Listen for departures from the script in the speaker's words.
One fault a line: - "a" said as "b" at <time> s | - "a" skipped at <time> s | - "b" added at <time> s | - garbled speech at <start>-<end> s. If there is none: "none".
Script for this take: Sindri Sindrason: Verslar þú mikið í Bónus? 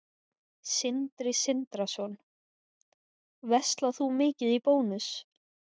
none